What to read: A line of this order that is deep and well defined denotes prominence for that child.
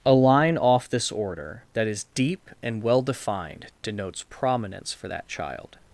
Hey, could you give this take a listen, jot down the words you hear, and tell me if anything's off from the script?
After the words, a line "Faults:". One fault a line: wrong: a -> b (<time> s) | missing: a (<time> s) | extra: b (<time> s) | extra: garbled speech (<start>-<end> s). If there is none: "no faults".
A line off this order that is deep and well defined denotes prominence for that child.
Faults:
wrong: of -> off (0.6 s)